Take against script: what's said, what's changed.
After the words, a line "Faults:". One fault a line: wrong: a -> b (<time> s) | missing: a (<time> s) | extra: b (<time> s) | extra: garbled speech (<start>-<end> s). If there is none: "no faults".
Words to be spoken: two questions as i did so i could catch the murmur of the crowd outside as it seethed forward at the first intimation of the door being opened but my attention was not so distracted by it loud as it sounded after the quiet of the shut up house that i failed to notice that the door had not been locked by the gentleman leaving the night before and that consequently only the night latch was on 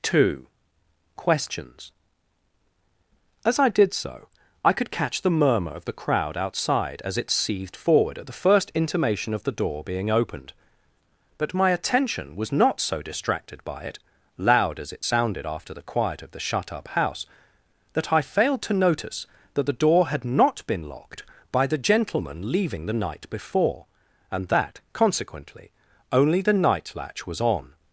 two questions as i did so i could catch the murmur of the crowd outside as it seethed forward at the first intimation of the door being opened but my attention was not so distracted by it loud as it sounded after the quiet of the shut up house that i failed to notice that the door had not been locked by the gentleman leaving the night before and that consequently only the night latch was on
Faults:
no faults